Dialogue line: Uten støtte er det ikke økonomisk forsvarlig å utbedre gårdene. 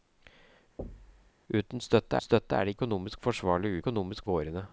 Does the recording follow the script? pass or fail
fail